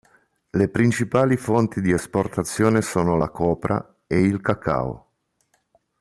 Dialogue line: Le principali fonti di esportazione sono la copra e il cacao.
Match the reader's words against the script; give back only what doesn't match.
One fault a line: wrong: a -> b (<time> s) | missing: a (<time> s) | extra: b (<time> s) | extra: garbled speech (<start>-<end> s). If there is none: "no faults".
no faults